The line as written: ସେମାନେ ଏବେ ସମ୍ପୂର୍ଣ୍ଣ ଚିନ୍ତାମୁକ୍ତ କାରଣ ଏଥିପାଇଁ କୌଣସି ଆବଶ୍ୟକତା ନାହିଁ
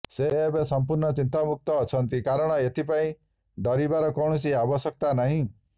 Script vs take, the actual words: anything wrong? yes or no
yes